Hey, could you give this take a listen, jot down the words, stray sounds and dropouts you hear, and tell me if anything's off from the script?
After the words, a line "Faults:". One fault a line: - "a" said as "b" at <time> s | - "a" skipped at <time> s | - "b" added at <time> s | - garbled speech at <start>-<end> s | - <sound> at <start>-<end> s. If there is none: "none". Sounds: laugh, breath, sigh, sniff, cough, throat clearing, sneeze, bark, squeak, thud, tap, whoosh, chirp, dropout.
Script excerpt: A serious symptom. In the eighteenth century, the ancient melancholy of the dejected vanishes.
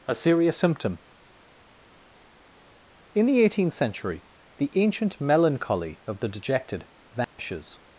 A serious symptom. In the eighteenth century, the ancient melancholy of the dejected vanishes.
Faults:
- dropout at 7.2-7.4 s